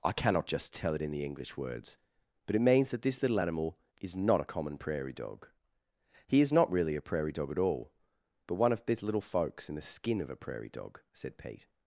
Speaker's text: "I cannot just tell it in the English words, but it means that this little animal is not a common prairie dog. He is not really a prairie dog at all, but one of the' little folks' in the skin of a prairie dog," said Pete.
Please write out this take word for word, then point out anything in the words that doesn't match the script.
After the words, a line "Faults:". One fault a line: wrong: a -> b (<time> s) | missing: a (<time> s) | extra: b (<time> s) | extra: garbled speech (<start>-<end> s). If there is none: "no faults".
"I cannot just tell it in the English words, but it means that this little animal is not a common prairie dog. He is not really a prairie dog at all, but one of these' little folks' in the skin of a prairie dog," said Pete.
Faults:
wrong: the -> these (8.8 s)